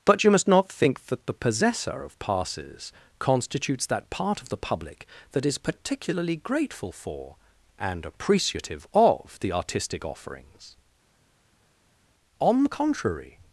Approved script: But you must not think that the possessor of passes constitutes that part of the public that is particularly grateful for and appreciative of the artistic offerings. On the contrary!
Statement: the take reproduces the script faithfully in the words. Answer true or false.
true